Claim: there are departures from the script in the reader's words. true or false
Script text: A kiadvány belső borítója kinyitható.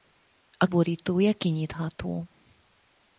true